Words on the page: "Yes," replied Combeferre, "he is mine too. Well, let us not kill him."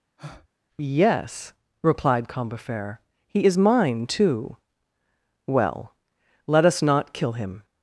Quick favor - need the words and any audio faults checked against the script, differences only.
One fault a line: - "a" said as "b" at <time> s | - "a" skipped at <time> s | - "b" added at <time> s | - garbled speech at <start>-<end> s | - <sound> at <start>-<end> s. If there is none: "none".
- breath at 0.2-0.5 s